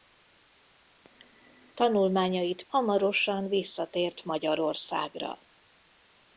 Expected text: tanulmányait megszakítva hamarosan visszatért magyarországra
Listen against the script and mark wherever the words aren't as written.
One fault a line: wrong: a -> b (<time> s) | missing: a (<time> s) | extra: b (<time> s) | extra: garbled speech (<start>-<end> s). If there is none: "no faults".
missing: megszakítva (2.6 s)